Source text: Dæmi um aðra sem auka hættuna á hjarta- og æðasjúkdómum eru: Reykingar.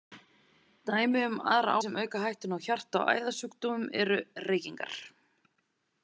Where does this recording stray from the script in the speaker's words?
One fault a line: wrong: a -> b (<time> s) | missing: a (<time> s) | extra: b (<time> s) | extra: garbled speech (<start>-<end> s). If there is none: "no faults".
no faults